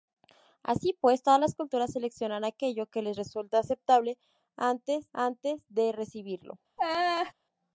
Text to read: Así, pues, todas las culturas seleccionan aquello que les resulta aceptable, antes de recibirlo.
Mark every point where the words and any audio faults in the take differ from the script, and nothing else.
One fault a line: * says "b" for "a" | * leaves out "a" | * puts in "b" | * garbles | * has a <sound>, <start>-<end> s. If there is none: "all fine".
* puts in "antes"
* has a laugh, 6.8-7.3 s